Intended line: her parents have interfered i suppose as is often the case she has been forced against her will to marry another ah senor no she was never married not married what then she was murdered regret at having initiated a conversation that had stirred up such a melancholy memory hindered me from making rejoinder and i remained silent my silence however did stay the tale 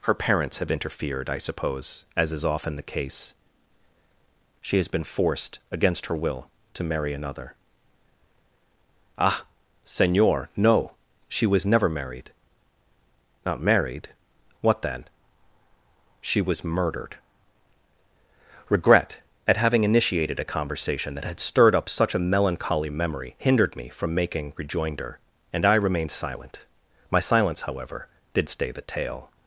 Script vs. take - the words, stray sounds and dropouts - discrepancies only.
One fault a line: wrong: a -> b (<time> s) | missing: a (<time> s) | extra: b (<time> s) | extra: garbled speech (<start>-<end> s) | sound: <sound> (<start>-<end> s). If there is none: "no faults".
no faults